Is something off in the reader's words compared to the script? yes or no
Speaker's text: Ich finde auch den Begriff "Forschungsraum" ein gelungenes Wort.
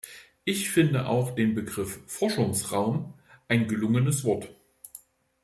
no